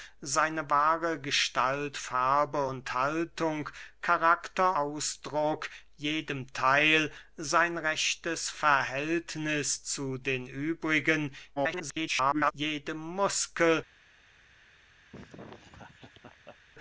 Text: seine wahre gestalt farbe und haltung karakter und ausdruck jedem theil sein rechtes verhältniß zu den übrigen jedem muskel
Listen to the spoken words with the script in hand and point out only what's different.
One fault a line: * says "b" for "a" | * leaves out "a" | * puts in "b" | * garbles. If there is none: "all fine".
* leaves out "und"
* garbles